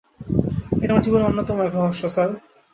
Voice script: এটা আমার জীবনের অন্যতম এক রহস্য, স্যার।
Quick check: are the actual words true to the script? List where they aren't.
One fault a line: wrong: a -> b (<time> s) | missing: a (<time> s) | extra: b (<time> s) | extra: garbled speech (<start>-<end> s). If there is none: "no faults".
no faults